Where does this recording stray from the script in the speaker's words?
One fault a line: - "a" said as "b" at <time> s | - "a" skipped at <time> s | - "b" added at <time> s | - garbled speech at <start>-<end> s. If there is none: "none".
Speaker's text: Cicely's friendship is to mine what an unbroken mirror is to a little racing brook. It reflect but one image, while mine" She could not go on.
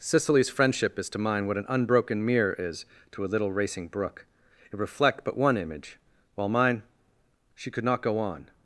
none